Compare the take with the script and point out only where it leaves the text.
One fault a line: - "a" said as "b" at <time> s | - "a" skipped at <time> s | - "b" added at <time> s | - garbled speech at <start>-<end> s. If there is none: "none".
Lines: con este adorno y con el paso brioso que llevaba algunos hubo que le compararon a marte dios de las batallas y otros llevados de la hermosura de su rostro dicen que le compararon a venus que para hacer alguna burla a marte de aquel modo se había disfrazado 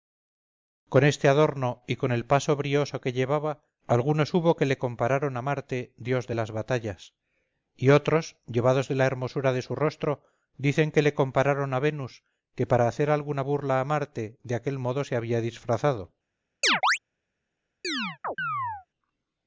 none